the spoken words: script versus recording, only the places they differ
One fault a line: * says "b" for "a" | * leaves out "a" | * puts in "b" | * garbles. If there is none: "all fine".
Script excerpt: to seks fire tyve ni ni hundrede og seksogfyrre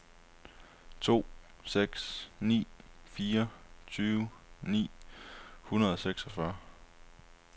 * puts in "ni"
* leaves out "ni"